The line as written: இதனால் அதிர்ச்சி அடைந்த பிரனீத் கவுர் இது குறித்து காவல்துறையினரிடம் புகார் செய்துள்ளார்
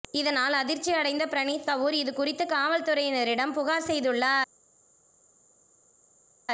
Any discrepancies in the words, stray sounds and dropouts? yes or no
no